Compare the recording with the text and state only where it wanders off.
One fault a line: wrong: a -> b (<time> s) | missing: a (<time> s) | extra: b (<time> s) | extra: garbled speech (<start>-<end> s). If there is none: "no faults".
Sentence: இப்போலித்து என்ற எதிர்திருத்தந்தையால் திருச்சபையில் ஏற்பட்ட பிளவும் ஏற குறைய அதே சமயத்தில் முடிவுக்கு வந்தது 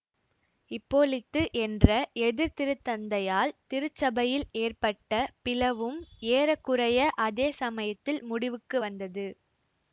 no faults